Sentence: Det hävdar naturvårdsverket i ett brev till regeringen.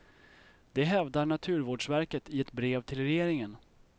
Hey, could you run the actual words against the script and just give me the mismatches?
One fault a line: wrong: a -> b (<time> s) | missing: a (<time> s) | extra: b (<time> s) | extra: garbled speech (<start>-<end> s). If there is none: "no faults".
no faults